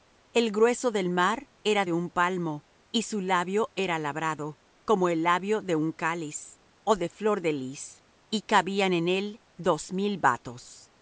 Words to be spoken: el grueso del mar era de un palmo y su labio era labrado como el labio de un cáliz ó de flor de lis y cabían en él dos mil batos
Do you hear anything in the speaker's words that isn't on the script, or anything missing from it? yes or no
no